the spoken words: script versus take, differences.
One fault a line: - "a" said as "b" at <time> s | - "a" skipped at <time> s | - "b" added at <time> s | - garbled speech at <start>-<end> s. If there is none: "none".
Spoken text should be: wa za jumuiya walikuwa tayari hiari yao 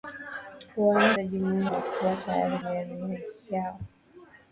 none